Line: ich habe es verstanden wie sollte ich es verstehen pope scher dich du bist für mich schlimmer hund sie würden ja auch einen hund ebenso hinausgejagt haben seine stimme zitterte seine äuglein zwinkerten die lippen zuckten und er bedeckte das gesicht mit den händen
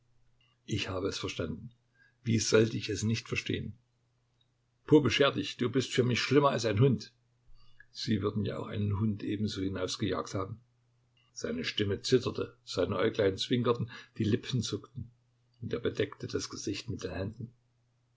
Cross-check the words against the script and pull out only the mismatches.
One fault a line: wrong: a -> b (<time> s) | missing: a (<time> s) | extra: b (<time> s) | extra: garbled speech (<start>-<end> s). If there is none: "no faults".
extra: nicht (3.0 s)
extra: als ein (6.5 s)